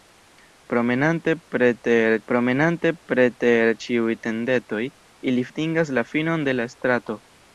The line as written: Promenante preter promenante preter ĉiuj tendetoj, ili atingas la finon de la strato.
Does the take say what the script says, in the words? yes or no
yes